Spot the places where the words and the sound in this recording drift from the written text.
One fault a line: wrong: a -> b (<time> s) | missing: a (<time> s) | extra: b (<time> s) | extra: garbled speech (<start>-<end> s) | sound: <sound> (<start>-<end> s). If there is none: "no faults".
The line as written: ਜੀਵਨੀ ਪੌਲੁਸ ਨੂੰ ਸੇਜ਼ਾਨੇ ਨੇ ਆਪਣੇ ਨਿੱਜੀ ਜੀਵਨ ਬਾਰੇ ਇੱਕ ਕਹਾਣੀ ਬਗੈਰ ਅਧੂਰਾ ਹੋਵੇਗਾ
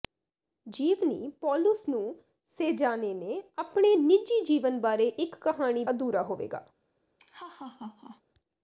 missing: ਬਗੈਰ (5.8 s)
sound: laugh (7.2-8.2 s)